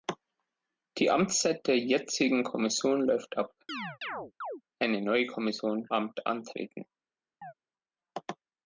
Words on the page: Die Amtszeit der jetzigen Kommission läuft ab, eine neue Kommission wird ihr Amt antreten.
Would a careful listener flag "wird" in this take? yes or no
yes